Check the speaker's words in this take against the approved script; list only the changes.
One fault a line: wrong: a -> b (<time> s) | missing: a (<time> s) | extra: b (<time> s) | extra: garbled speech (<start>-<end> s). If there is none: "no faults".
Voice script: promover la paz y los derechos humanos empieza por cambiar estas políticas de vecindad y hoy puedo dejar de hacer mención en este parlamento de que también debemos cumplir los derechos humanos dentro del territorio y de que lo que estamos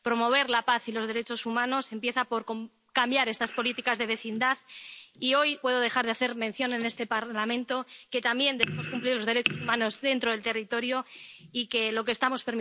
no faults